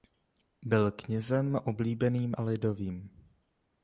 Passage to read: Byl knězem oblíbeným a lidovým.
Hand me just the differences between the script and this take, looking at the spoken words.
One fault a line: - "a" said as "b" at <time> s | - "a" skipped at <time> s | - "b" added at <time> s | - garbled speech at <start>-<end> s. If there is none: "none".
none